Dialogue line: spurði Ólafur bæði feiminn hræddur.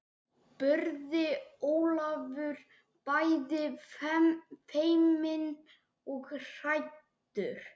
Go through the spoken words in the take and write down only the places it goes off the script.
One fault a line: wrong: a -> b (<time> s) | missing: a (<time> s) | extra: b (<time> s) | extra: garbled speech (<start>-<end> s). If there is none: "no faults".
extra: og (6.2 s)